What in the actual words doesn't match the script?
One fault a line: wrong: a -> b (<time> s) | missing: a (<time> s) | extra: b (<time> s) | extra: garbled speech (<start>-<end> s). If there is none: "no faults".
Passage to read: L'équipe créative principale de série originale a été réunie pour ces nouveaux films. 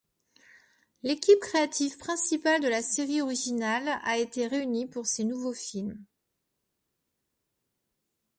extra: la (2.7 s)